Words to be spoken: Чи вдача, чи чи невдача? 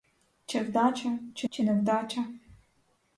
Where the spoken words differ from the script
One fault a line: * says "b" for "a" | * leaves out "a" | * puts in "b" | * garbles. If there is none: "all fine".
all fine